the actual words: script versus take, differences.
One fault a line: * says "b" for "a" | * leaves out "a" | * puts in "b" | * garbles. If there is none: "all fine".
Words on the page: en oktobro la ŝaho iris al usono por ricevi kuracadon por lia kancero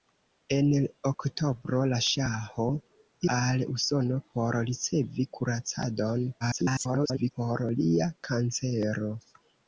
* leaves out "iris"
* garbles